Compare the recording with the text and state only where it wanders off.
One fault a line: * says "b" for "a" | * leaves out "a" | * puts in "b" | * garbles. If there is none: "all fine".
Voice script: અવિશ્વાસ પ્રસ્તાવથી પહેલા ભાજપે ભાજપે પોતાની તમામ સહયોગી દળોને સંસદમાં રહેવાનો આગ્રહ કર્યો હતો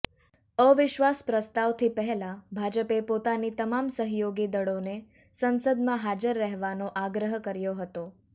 * leaves out "ભાજપે"
* puts in "હાજર"